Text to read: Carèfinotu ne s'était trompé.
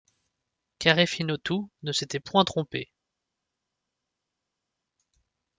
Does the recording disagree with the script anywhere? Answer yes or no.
yes